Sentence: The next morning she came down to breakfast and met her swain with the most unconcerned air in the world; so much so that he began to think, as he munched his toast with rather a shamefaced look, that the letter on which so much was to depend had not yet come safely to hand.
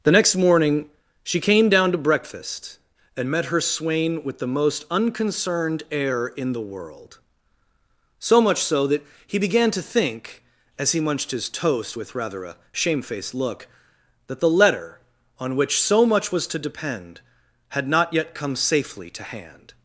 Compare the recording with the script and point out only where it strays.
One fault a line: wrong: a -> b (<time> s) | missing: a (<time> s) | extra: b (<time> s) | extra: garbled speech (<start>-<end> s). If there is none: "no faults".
no faults